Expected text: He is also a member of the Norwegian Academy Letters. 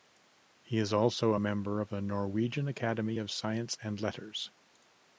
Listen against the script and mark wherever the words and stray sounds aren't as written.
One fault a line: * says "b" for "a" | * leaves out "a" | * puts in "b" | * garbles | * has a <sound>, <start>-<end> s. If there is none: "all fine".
* puts in "of Science and"